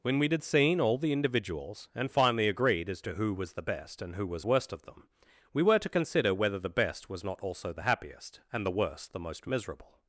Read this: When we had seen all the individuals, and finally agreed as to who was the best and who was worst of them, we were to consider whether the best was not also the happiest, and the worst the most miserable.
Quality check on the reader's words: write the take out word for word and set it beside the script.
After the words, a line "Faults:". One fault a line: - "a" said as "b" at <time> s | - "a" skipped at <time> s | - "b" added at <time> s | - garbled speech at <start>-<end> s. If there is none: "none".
When we had seen all the individuals, and finally agreed as to who was the best and who was worst of them, we were to consider whether the best was not also the happiest, and the worst the most miserable.
Faults:
none